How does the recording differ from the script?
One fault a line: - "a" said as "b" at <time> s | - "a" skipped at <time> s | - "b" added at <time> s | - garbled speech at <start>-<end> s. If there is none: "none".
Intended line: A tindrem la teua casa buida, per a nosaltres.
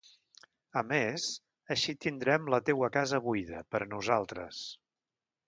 - "més així" added at 0.9 s